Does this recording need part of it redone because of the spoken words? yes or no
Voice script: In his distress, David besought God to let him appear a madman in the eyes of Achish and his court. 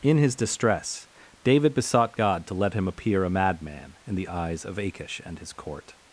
no